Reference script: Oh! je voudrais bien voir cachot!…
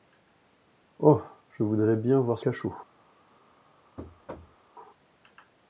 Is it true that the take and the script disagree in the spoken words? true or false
false